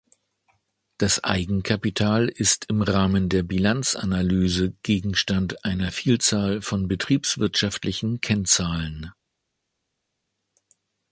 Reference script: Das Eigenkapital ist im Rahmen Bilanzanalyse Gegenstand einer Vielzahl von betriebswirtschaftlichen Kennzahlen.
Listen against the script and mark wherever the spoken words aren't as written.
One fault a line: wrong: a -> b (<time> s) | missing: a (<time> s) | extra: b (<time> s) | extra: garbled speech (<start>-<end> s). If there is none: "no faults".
extra: der (3.3 s)